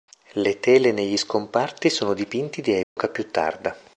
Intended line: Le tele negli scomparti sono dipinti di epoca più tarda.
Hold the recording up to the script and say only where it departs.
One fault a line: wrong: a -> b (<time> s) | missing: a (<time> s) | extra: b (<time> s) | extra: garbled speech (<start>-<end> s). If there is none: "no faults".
no faults